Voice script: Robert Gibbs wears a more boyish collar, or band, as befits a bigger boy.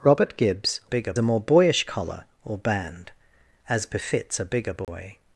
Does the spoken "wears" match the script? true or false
false